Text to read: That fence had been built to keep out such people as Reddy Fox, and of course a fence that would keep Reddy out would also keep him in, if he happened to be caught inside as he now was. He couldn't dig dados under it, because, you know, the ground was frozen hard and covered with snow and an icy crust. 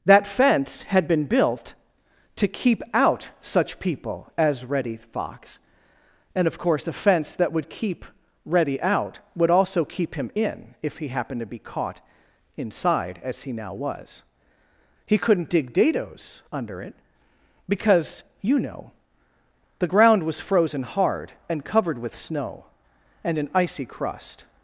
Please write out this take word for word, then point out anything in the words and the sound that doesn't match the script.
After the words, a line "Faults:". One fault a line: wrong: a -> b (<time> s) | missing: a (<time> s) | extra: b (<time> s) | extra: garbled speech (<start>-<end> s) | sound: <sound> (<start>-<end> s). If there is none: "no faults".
That fence had been built to keep out such people as Reddy Fox, and of course a fence that would keep Reddy out would also keep him in, if he happened to be caught inside as he now was. He couldn't dig dados under it, because, you know, the ground was frozen hard and covered with snow and an icy crust.
Faults:
no faults